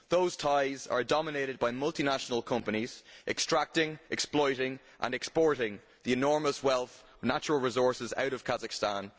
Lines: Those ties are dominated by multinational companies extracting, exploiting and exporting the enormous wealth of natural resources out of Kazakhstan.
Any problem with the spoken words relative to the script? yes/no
no